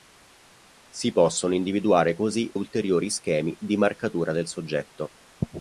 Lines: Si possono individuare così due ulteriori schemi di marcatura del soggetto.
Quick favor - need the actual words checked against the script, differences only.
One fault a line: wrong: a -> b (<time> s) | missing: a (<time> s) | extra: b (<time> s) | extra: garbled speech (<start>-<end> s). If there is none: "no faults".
missing: due (2.5 s)